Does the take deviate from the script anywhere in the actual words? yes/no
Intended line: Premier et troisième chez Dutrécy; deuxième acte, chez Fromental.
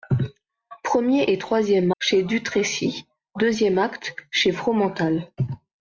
no